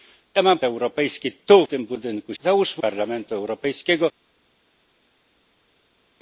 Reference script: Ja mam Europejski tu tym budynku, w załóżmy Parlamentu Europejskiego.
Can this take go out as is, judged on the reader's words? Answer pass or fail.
pass